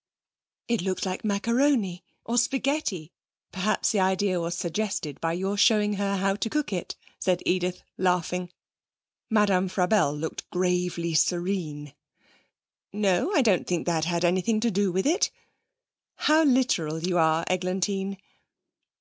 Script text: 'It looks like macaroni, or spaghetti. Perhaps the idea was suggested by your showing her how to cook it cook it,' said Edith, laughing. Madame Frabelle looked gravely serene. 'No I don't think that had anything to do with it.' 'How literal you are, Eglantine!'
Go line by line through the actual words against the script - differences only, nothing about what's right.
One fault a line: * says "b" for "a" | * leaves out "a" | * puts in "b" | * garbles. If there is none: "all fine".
* leaves out "cook it"